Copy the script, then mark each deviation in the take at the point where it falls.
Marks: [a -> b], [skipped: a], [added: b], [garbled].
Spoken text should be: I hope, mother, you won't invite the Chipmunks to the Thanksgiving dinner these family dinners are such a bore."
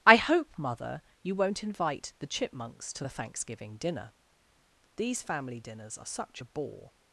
I hope, mother, you won't invite the Chipmunks to the Thanksgiving dinner these family dinners are such a bore."